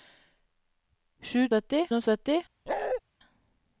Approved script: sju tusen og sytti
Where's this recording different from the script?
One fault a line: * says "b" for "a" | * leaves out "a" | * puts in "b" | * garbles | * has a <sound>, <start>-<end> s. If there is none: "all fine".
* says "sytti" for "tusen"
* has a bark, 2.7-3.0 s